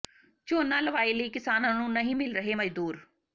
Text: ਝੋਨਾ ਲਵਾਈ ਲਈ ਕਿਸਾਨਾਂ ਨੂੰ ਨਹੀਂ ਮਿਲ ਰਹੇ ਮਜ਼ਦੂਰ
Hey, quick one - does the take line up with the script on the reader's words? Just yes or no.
yes